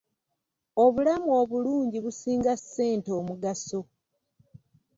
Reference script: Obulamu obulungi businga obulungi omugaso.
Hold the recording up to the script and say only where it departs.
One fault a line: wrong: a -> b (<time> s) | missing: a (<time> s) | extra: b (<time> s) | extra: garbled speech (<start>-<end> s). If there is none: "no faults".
wrong: obulungi -> ssente (2.6 s)